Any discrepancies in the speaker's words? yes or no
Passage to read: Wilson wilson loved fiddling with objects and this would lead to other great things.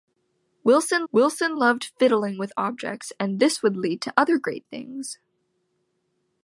no